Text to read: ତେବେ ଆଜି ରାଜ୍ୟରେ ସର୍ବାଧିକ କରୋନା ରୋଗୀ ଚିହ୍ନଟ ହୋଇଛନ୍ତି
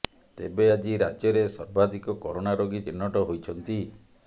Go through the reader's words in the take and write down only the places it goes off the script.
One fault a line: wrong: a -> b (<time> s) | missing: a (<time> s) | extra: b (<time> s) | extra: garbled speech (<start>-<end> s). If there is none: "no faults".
no faults